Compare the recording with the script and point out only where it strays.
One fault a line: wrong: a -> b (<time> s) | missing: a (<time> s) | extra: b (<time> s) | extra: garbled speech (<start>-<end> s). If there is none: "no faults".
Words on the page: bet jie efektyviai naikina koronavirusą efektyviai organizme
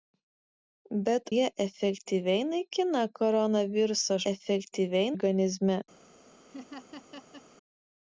no faults